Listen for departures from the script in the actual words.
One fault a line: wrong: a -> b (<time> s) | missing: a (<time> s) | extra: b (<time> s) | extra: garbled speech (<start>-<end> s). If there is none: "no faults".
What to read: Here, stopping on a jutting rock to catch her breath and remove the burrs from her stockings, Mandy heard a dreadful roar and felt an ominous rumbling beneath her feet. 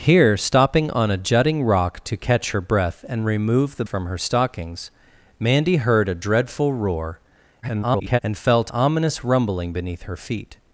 missing: burrs (3.8 s)
extra: garbled speech (7.6-8.2 s)
missing: an (8.7 s)